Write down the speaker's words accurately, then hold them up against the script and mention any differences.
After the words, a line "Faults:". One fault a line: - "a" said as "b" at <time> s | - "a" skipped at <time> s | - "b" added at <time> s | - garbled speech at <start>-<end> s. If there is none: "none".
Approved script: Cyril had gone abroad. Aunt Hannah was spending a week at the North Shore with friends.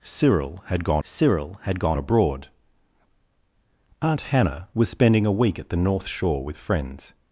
Cyril had gone cyril had gone abroad. Aunt Hannah was spending a week at the North Shore with friends.
Faults:
- "cyril had gone" added at 1.0 s